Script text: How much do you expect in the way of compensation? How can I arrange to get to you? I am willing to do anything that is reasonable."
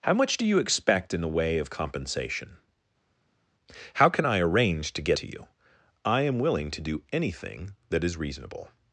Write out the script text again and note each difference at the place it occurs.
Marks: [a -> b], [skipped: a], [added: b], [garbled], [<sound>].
How much do you expect in the way of compensation? How can I arrange to get to you? I am willing to do anything that is reasonable."